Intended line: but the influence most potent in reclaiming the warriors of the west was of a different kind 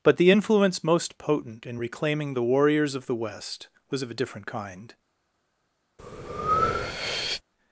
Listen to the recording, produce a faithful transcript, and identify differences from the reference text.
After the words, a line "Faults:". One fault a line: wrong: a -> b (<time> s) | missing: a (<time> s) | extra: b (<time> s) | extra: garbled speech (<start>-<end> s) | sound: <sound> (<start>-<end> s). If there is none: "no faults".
but the influence most potent in reclaiming the warriors of the west was of a different kind
Faults:
sound: breath (6.0-7.4 s)